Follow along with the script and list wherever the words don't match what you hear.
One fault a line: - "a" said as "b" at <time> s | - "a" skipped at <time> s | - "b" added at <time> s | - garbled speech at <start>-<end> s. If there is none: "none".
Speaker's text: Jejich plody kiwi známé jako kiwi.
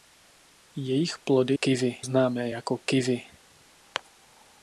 none